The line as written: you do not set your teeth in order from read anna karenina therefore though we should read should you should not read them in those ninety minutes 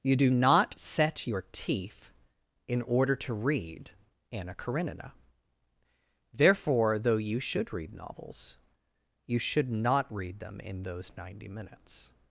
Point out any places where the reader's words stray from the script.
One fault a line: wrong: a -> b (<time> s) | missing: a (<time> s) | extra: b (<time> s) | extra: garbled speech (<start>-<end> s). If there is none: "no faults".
wrong: from -> to (3.2 s)
wrong: we -> you (7.2 s)
wrong: should -> novels (7.9 s)